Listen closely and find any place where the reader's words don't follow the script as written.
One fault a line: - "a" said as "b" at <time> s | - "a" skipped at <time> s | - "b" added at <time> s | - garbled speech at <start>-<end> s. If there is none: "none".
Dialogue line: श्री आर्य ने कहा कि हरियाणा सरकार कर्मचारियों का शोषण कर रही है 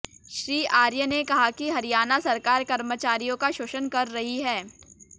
none